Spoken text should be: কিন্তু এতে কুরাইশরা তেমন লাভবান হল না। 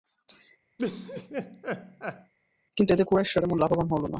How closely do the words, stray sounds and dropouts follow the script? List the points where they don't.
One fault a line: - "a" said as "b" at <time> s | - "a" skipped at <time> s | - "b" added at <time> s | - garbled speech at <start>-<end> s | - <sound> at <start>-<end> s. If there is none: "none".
- laugh at 0.8-2.3 s